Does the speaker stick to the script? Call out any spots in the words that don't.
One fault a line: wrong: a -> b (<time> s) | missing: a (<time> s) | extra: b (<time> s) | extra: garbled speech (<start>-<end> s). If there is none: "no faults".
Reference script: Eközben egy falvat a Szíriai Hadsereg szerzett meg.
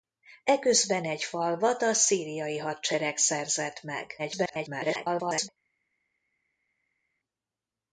extra: garbled speech (4.2-5.5 s)